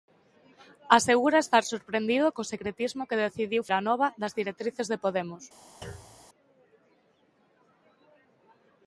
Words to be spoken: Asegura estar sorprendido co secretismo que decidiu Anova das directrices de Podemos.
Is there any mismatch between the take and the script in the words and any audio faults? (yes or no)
yes